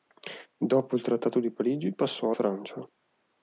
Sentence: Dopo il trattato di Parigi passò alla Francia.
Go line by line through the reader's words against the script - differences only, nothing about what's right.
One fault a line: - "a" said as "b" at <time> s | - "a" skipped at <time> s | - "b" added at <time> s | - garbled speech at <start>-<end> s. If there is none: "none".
- "alla" skipped at 2.3 s